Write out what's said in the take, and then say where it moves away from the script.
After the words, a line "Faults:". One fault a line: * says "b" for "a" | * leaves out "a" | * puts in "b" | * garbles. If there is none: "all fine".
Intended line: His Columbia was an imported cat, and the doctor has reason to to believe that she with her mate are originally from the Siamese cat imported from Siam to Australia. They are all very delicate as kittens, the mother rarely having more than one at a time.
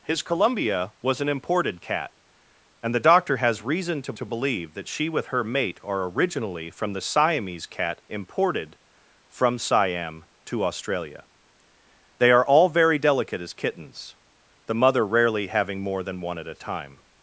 His Columbia was an imported cat, and the doctor has reason to to believe that she with her mate are originally from the Siamese cat imported from Siam to Australia. They are all very delicate as kittens, the mother rarely having more than one at a time.
Faults:
all fine